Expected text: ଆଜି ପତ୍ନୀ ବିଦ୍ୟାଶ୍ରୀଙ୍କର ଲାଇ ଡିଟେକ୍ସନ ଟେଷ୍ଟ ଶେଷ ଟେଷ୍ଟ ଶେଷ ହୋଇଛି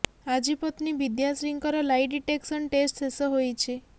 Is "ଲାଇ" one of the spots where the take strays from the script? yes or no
no